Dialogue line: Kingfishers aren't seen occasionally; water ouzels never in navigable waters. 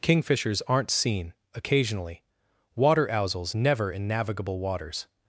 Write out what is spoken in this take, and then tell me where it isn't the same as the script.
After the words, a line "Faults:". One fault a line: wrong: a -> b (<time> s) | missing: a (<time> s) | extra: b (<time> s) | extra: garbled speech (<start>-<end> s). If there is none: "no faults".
Kingfishers aren't seen occasionally; water ouzels never in navigable waters.
Faults:
no faults